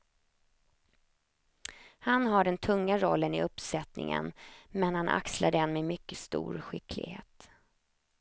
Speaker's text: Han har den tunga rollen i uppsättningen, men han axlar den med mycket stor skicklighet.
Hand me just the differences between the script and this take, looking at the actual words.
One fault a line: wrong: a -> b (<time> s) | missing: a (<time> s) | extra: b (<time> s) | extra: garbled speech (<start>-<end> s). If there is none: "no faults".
no faults